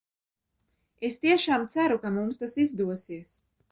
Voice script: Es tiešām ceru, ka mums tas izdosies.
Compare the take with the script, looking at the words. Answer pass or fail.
pass